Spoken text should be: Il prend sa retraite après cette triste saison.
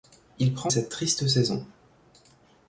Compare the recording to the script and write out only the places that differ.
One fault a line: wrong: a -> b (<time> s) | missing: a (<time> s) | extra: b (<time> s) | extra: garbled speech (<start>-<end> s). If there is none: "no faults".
missing: sa retraite après (0.7 s)